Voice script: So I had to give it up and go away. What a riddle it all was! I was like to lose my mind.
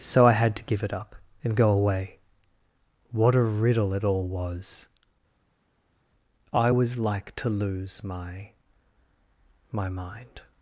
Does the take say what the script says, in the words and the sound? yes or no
no